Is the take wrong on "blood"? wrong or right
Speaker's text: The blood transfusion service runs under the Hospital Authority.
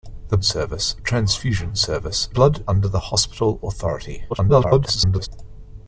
wrong